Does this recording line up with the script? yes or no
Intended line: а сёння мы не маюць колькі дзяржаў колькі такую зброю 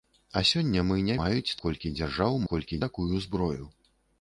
yes